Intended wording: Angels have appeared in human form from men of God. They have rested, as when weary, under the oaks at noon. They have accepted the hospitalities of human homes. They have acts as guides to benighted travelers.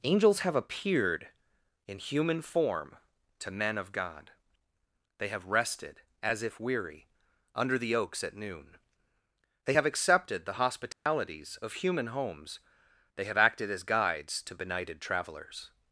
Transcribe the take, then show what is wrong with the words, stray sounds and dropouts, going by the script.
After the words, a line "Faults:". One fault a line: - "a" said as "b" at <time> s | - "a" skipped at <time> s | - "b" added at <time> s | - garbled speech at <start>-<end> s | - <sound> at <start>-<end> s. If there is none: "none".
Angels have appeared in human form to men of God. They have rested, as if weary, under the oaks at noon. They have accepted the hospitalities of human homes. They have acted as guides to benighted travelers.
Faults:
- "from" said as "to" at 3.4 s
- "when" said as "if" at 6.4 s
- dropout at 10.9-11.1 s
- "acts" said as "acted" at 13.4 s